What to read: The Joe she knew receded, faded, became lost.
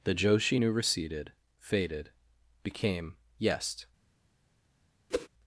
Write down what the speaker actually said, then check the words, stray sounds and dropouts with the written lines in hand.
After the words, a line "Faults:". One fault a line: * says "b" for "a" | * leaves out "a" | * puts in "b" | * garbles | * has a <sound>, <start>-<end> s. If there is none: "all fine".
The Joe she knew receded, faded, became yest.
Faults:
* says "yest" for "lost"
* has a whoosh, 5.1-5.3 s